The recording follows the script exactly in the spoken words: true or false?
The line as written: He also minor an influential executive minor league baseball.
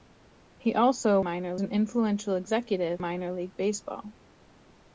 true